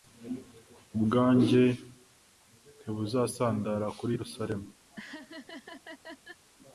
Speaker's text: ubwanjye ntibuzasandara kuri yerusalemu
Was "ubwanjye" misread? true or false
false